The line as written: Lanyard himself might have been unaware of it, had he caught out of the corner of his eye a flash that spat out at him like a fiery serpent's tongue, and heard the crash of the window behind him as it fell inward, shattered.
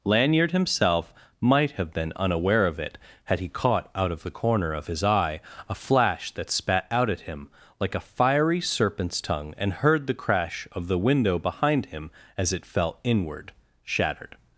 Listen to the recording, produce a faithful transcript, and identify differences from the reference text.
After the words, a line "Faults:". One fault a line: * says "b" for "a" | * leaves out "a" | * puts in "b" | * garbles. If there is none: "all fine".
Lanyard himself might have been unaware of it, had he caught out of the corner of his eye a flash that spat out at him like a fiery serpent's tongue, and heard the crash of the window behind him as it fell inward, shattered.
Faults:
all fine